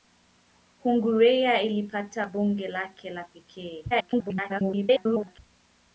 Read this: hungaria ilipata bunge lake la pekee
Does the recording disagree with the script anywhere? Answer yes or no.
yes